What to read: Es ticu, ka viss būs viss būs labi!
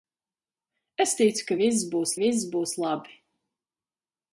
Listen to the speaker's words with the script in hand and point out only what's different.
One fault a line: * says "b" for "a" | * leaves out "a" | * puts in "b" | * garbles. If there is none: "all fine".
all fine